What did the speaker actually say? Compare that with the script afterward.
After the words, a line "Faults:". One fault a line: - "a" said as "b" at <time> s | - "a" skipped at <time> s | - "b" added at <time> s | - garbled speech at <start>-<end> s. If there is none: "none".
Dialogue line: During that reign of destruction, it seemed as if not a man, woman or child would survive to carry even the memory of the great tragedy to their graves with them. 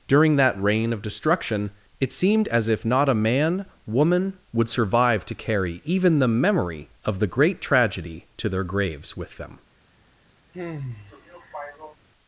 During that reign of destruction, it seemed as if not a man, woman would survive to carry even the memory of the great tragedy to their graves with them.
Faults:
- "or child" skipped at 4.4 s